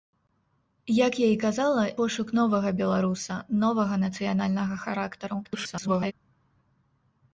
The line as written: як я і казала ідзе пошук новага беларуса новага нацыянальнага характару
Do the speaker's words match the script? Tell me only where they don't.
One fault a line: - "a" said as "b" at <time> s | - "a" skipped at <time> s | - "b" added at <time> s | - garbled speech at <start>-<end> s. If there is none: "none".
- "ідзе" skipped at 1.8 s
- garbled speech at 5.4-6.1 s